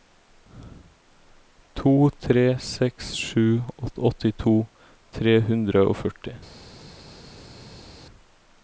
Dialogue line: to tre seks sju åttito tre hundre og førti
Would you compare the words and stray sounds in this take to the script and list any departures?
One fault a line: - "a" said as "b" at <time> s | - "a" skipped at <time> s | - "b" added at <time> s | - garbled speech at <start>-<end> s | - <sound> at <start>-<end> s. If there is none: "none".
none